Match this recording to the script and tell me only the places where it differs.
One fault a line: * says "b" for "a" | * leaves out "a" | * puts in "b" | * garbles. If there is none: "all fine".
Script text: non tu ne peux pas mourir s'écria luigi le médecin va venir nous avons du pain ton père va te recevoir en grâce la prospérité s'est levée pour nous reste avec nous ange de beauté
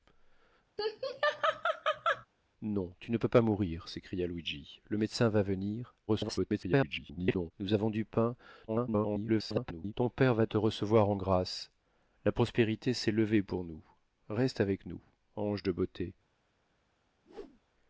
* garbles
* garbles